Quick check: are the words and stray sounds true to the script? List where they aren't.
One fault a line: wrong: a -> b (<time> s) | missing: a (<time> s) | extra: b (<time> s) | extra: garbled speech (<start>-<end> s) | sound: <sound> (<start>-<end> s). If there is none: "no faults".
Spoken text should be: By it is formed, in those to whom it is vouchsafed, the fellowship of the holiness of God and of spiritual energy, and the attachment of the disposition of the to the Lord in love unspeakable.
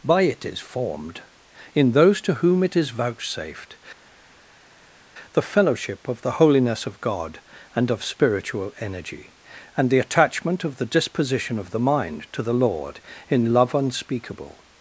extra: mind (11.8 s)